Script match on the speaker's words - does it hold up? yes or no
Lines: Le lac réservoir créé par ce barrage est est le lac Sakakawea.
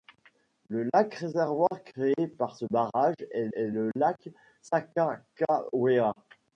yes